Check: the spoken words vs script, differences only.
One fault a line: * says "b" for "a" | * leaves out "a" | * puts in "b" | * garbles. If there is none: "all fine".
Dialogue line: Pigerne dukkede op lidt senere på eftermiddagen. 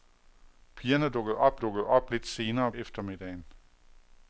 * puts in "dukkede op"
* leaves out "på"